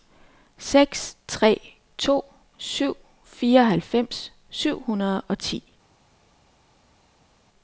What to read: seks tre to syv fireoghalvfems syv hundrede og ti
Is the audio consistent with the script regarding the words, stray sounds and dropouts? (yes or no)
yes